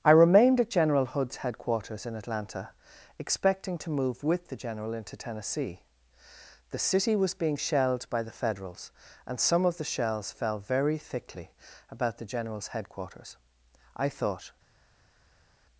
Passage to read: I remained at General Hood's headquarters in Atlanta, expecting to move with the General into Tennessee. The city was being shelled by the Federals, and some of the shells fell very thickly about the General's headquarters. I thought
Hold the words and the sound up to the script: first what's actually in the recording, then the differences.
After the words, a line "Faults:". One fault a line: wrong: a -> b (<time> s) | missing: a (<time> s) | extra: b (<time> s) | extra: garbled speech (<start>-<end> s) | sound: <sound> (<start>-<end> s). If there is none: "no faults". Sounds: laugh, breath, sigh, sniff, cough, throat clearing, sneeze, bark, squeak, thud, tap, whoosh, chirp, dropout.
I remained at General Hood's headquarters in Atlanta, expecting to move with the General into Tennessee. The city was being shelled by the Federals, and some of the shells fell very thickly about the General's headquarters. I thought
Faults:
no faults